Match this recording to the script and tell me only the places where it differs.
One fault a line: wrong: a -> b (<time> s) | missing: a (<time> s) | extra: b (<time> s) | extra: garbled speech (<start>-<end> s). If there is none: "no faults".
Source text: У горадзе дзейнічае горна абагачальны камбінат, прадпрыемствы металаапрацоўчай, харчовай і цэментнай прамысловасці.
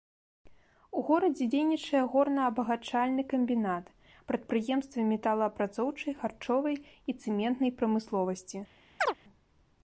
no faults